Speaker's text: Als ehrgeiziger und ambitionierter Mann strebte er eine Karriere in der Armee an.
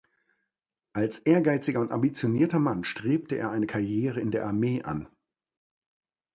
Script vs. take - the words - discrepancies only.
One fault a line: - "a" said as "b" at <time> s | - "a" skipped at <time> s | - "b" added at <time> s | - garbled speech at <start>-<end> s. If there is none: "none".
none